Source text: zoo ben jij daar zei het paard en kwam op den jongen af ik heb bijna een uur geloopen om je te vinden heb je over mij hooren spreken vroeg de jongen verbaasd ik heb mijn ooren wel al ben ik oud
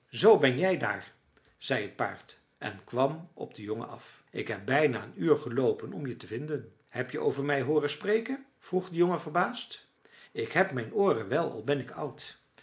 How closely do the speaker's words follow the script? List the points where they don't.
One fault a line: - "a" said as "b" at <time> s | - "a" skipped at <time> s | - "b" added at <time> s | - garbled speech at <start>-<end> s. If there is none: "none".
none